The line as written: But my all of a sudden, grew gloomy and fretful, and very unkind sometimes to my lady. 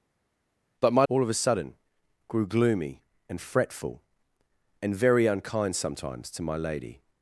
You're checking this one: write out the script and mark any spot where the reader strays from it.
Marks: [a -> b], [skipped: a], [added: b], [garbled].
But my all of a sudden, grew gloomy and fretful, and very unkind sometimes to my lady.